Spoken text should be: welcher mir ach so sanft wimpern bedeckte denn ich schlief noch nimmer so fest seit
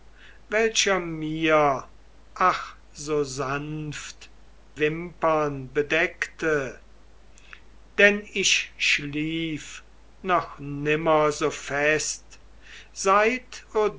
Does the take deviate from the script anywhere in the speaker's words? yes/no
no